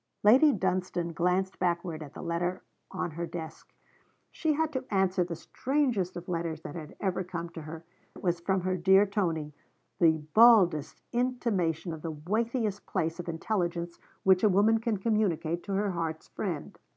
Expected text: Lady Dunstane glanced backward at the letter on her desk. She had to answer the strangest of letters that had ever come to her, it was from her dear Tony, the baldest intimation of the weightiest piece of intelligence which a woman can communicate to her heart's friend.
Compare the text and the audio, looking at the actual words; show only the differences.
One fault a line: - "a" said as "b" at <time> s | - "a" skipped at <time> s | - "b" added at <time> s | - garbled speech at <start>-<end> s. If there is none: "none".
none